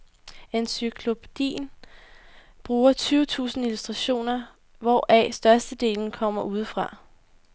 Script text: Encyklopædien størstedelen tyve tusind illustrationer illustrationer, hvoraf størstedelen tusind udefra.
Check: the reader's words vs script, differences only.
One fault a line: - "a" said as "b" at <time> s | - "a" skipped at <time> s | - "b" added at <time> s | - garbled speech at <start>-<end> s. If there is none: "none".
- "størstedelen" said as "bruger" at 2.6 s
- "illustrationer" skipped at 4.4 s
- "tusind" said as "kommer" at 6.1 s